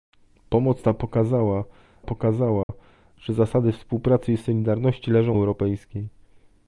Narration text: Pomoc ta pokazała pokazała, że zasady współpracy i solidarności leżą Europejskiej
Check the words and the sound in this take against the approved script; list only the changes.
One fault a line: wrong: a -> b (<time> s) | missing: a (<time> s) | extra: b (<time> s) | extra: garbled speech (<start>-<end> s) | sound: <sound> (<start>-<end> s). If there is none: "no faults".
sound: dropout (2.6-2.7 s)